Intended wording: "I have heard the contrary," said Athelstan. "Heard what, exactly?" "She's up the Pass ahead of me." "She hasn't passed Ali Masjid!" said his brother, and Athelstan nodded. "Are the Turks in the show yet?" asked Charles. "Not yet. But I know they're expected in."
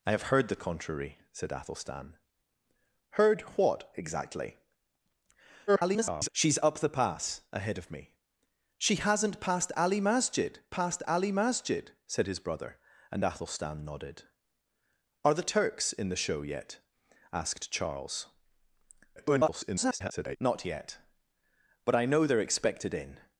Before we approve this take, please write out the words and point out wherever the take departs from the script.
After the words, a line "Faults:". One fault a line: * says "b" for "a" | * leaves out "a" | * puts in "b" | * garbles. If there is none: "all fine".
"I have heard the contrary," said Athelstan. "Heard what, exactly?" [garbled] "She's up the Pass ahead of me." "She hasn't passed Ali Masjid passed Ali Masjid!" said his brother, and Athelstan nodded. "Are the Turks in the show yet?" asked Charles. [garbled] "Not yet. But I know they're expected in."
Faults:
* garbles
* puts in "passed Ali Masjid"
* garbles